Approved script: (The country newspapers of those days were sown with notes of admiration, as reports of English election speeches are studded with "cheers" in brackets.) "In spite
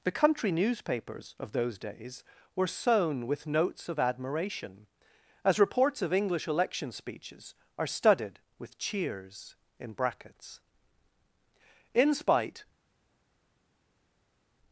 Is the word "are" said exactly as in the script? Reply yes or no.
yes